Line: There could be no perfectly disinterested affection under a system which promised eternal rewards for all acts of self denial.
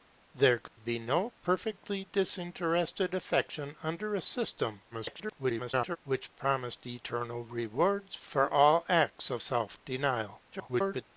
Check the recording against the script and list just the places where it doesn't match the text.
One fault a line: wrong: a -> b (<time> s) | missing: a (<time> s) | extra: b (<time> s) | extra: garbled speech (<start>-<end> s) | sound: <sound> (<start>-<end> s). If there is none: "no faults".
sound: dropout (0.7-0.8 s)
extra: garbled speech (4.9-6.0 s)
extra: garbled speech (10.5-11.0 s)